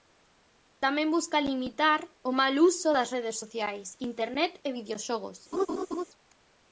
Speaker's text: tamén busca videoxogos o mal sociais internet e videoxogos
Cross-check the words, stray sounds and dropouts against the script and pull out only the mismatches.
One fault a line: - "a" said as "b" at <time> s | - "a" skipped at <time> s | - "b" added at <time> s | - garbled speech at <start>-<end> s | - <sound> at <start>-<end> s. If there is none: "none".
- "videoxogos" said as "limitar" at 1.5 s
- "uso das redes" added at 2.7 s
- laugh at 5.5-6.0 s